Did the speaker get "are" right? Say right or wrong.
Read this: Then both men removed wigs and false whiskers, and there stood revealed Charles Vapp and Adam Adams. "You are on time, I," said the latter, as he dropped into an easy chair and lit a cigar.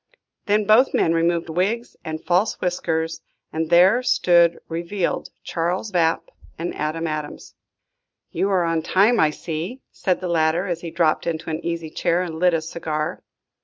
right